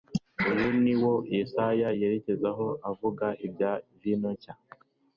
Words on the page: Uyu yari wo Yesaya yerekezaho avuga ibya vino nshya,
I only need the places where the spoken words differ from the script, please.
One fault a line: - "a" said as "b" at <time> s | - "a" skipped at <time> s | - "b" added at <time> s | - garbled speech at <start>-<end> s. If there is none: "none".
- "yari" said as "ni" at 0.8 s